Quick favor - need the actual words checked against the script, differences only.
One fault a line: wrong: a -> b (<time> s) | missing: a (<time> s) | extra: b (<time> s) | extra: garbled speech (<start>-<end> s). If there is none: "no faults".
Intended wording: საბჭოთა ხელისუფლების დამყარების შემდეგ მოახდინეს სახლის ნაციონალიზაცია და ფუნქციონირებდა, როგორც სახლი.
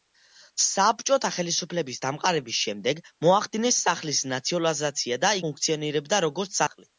no faults